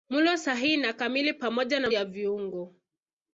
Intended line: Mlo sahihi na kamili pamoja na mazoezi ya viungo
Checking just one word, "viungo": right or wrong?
right